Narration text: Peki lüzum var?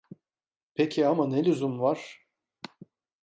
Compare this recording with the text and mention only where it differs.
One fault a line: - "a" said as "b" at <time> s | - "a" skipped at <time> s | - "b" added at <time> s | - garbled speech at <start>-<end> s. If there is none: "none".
- "ama ne" added at 1.1 s